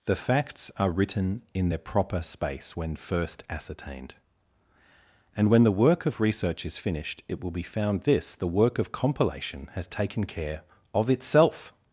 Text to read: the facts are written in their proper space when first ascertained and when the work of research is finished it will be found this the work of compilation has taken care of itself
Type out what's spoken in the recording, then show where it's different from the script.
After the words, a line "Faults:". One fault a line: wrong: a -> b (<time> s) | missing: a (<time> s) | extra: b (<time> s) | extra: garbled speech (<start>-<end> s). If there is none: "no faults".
the facts are written in their proper space when first ascertained and when the work of research is finished it will be found this the work of compilation has taken care of itself
Faults:
no faults